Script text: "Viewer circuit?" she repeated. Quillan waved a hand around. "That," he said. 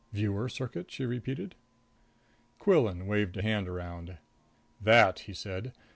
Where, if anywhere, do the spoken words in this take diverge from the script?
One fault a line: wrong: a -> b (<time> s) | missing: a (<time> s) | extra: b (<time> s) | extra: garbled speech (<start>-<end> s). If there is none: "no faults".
no faults